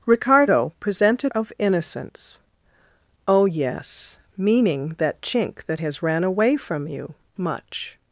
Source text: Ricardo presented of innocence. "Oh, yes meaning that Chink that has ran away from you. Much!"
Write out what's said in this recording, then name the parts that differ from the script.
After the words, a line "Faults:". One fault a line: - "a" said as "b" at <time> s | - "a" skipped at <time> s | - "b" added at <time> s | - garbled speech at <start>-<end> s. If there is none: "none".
Ricardo presented of innocence. "Oh, yes meaning that Chink that has ran away from you. Much!"
Faults:
none